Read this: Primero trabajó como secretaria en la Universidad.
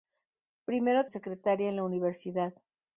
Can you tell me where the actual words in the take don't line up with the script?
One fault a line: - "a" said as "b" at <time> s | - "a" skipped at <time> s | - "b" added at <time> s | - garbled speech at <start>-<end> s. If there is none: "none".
- "trabajó como" skipped at 1.1 s